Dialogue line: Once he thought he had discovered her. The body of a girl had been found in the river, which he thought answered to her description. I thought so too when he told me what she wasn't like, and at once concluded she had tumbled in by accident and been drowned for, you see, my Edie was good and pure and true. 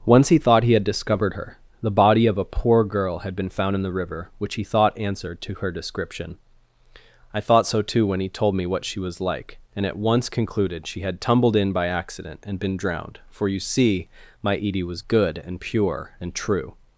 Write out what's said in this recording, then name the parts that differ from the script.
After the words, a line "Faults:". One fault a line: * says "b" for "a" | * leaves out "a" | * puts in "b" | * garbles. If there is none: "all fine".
Once he thought he had discovered her. The body of a poor girl had been found in the river, which he thought answered to her description. I thought so too when he told me what she was like, and at once concluded she had tumbled in by accident and been drowned for, you see, my Edie was good and pure and true.
Faults:
* puts in "poor"
* says "was" for "wasn't"